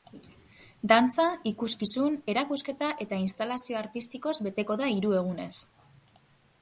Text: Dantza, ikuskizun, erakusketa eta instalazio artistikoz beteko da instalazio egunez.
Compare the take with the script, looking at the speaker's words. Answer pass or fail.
fail